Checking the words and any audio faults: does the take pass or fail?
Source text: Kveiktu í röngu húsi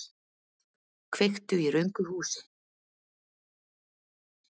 pass